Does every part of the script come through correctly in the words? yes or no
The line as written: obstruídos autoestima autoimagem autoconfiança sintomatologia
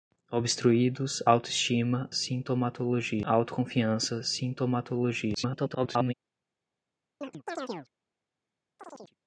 no